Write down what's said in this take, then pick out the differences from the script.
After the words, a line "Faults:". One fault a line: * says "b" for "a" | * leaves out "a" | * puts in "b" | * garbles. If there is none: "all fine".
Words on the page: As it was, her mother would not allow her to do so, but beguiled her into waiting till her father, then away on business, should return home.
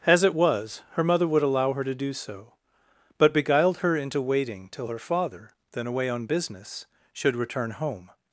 As it was, her mother would allow her to do so, but beguiled her into waiting till her father, then away on business, should return home.
Faults:
* leaves out "not"